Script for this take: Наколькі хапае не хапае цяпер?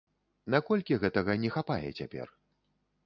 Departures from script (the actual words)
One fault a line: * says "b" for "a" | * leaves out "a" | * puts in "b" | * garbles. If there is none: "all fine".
* says "гэтага" for "хапае"